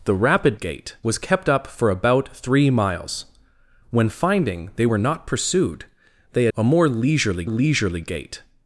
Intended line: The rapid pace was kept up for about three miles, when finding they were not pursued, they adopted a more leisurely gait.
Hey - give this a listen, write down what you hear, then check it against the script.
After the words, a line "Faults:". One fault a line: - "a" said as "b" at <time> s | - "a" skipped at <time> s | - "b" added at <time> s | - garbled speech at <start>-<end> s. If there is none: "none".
The rapid gait was kept up for about three miles, when finding they were not pursued, they a more leisurely leisurely gait.
Faults:
- "pace" said as "gait" at 0.5 s
- "adopted" skipped at 6.5 s
- "leisurely" added at 7.4 s